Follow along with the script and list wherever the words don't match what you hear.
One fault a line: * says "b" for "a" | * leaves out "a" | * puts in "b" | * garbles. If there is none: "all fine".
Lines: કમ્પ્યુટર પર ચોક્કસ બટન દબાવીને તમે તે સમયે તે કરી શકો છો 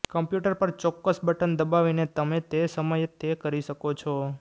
all fine